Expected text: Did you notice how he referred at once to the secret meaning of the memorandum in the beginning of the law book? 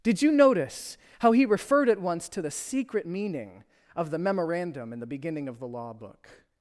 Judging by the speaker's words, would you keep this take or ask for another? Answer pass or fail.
pass